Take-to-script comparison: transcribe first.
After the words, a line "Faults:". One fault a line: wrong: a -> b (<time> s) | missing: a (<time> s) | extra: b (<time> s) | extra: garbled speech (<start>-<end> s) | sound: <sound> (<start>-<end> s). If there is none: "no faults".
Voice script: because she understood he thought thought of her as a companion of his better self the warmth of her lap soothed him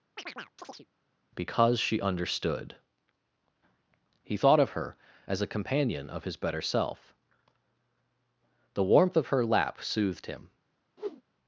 because she understood he thought of her as a companion of his better self the warmth of her lap soothed him
Faults:
sound: chirp (0.2-0.9 s)
missing: thought (4.6 s)
sound: whoosh (11.0-11.2 s)